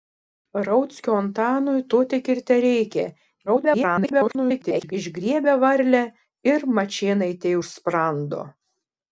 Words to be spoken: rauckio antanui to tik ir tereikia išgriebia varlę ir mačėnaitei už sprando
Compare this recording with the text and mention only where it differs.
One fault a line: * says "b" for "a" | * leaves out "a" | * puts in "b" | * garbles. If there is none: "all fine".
* garbles